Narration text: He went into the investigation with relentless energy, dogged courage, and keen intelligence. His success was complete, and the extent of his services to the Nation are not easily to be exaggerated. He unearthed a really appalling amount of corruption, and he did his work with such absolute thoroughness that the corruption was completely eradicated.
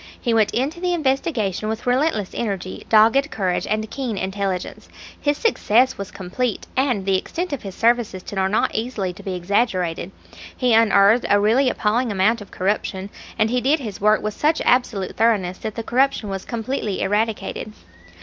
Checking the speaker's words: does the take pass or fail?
fail